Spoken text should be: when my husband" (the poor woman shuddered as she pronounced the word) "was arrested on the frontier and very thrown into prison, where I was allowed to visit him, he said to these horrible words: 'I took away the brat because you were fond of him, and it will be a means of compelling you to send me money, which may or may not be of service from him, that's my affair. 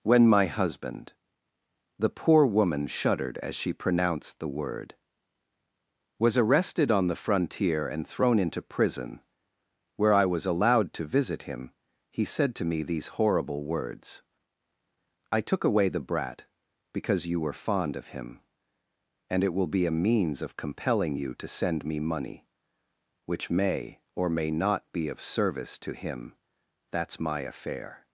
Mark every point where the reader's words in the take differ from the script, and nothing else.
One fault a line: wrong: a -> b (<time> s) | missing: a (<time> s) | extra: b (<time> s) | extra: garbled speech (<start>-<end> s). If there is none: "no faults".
missing: very (8.1 s)
extra: me (12.7 s)
wrong: from -> to (25.8 s)